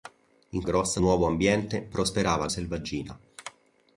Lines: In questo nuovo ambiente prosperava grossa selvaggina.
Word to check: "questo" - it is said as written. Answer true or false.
false